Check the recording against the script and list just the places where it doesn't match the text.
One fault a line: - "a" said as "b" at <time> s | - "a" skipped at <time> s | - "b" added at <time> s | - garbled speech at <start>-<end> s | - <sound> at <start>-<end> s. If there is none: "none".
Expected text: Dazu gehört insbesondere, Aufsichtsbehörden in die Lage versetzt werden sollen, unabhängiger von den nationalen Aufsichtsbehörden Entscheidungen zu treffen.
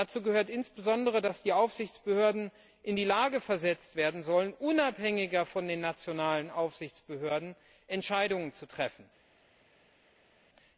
- "dass die" added at 1.2 s